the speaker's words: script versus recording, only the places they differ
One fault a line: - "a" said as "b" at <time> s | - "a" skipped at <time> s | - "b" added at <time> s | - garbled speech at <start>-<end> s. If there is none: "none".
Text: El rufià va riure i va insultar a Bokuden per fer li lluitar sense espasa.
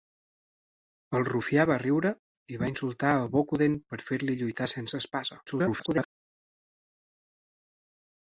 - garbled speech at 5.5-6.1 s